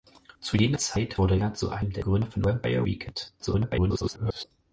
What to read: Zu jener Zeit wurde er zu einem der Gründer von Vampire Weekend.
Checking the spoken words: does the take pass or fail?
fail